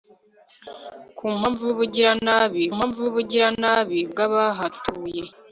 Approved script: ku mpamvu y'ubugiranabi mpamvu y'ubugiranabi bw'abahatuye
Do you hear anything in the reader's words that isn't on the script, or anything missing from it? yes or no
no